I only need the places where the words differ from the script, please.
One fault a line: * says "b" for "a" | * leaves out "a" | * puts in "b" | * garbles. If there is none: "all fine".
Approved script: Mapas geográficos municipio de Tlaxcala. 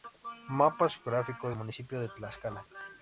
all fine